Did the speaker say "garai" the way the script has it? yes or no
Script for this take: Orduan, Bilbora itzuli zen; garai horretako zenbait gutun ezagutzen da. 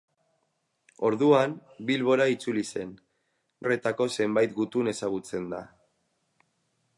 no